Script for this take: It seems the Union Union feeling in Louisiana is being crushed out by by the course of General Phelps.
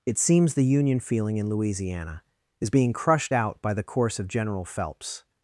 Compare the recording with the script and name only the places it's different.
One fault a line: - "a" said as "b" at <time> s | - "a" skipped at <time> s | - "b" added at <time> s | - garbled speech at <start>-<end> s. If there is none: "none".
- "Union" skipped at 1.0 s
- "by" skipped at 3.7 s